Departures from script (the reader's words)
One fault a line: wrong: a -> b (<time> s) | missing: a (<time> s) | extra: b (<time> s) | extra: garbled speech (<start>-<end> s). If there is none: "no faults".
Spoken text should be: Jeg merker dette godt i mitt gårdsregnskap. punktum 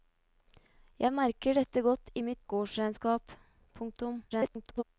extra: garbled speech (4.3-4.8 s)